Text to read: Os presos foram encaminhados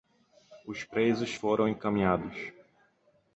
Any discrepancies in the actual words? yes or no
no